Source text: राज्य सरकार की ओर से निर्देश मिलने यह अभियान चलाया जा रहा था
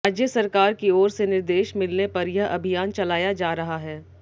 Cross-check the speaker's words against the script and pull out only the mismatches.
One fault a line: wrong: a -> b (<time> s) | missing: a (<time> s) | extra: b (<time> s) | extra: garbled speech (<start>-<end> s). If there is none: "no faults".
extra: पर (2.1 s)
wrong: था -> है (3.8 s)